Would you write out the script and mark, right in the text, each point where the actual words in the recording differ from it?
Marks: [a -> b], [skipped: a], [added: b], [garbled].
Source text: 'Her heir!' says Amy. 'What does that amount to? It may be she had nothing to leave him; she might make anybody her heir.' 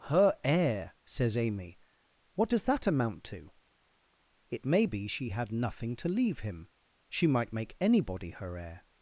'Her heir!' says Amy. 'What does that amount to? It may be she had nothing to leave him; she might make anybody her heir.'